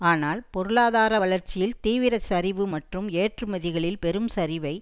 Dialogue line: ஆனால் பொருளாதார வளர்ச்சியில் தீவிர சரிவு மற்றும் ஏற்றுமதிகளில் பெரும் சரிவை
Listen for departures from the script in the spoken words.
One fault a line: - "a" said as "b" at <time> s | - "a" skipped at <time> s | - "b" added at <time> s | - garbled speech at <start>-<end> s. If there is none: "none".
none